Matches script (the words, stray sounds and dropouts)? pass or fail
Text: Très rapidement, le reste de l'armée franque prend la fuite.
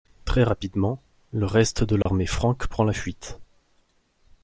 fail